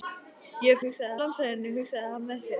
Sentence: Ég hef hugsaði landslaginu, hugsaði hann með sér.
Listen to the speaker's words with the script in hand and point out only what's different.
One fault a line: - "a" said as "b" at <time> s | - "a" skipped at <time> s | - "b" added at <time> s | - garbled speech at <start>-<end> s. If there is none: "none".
none